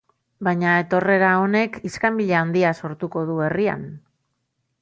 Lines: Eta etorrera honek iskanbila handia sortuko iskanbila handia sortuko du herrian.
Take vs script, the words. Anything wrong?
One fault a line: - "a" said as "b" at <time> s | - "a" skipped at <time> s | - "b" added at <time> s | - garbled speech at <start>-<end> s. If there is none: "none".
- "Eta" said as "Baina" at 0.5 s
- "iskanbila handia sortuko" skipped at 3.3 s